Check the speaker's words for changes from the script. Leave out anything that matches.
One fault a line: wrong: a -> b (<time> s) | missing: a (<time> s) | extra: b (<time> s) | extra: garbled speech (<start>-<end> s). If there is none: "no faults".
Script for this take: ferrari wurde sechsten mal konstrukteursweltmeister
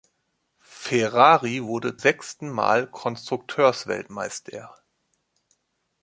no faults